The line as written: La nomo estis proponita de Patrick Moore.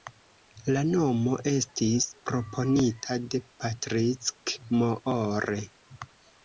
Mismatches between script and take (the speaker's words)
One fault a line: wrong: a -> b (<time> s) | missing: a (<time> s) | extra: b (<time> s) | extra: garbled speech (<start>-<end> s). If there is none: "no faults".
no faults